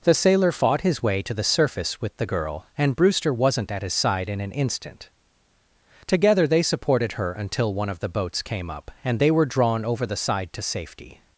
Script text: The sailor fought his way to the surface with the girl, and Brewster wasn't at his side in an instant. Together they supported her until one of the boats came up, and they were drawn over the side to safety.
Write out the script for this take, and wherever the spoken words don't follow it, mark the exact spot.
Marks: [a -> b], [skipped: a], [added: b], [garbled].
The sailor fought his way to the surface with the girl, and Brewster wasn't at his side in an instant. Together they supported her until one of the boats came up, and they were drawn over the side to safety.